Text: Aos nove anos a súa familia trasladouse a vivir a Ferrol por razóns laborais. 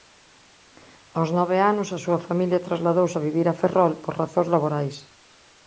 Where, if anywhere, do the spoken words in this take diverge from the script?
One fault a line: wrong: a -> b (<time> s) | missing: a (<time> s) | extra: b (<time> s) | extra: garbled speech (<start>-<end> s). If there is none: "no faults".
no faults